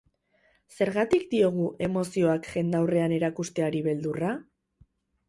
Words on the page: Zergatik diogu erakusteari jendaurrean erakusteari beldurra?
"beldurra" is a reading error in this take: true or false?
false